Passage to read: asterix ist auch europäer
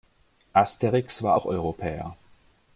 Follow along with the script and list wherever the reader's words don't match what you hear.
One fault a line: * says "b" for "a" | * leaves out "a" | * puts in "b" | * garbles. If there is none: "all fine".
* says "war" for "ist"